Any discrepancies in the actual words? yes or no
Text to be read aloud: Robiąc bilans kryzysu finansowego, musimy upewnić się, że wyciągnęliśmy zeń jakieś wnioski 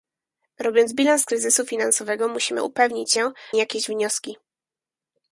yes